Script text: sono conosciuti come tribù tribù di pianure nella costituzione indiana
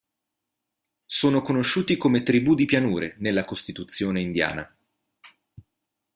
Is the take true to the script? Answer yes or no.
no